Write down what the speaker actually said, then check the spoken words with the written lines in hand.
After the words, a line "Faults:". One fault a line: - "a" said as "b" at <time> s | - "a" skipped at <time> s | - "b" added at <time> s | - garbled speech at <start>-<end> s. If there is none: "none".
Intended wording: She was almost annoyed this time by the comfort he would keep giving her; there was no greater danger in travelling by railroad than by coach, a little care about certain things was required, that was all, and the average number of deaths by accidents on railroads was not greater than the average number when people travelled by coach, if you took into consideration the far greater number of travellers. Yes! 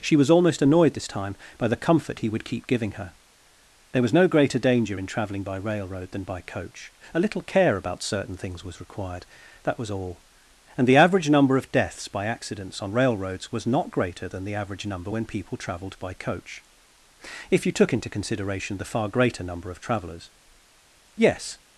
She was almost annoyed this time by the comfort he would keep giving her; there was no greater danger in travelling by railroad than by coach, a little care about certain things was required, that was all, and the average number of deaths by accidents on railroads was not greater than the average number when people travelled by coach, if you took into consideration the far greater number of travellers. Yes!
Faults:
none